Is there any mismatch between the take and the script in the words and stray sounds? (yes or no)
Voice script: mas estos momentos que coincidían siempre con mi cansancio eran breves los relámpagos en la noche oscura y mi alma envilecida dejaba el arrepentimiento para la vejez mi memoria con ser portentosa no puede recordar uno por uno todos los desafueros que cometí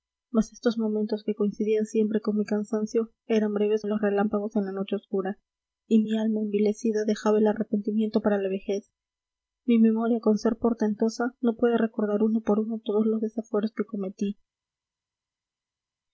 no